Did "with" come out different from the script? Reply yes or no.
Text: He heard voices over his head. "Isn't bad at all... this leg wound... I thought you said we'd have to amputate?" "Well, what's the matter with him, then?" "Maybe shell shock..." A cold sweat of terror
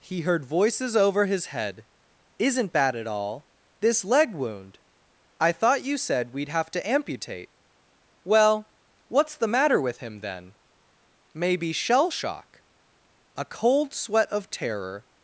no